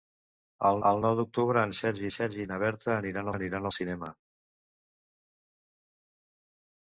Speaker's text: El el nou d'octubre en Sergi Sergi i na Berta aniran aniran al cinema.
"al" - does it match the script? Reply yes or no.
yes